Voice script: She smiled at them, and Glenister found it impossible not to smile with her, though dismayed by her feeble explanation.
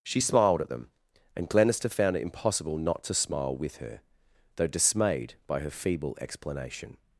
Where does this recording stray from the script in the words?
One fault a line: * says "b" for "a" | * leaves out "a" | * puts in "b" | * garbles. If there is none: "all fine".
all fine